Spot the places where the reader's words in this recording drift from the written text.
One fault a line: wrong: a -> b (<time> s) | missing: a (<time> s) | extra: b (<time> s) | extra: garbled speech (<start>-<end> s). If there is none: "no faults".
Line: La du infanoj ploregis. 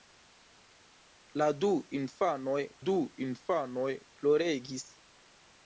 extra: du infanoj (2.8 s)